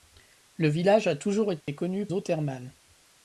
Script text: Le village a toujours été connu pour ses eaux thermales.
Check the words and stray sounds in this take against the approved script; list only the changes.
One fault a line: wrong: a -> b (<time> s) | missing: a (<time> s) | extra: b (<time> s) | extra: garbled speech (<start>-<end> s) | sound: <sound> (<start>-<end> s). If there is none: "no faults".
sound: dropout (1.6-1.7 s)
missing: pour ses (2.1 s)